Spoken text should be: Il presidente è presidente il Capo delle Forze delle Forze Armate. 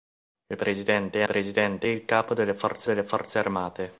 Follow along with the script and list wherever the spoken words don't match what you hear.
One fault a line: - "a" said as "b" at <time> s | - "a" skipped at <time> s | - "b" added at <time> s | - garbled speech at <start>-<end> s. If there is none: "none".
none